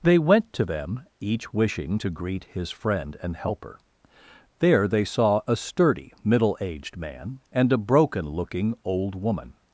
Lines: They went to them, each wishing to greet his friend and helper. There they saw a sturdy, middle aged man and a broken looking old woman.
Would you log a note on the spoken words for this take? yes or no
no